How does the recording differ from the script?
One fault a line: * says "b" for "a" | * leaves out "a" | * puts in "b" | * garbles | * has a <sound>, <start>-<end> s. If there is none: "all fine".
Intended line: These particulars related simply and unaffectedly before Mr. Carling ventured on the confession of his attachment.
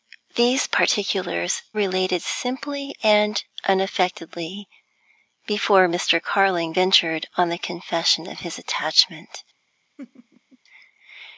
* has a laugh, 10.0-10.6 s